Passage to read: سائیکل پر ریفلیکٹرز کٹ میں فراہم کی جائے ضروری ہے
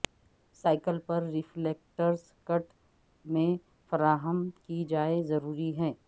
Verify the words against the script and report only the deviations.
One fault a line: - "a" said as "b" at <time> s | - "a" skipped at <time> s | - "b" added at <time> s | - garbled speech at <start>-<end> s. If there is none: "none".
none